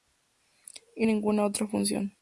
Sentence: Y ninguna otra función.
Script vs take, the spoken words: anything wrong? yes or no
no